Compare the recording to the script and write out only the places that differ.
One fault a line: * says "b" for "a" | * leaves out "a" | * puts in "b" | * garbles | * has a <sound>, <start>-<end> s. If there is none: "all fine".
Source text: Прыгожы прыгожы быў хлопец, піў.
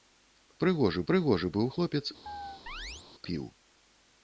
* has a chirp, 2.3-3.1 s